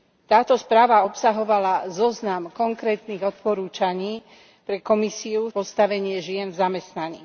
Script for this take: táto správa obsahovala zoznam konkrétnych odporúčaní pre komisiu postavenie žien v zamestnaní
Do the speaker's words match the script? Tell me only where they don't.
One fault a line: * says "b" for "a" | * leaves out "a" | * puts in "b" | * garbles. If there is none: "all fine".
all fine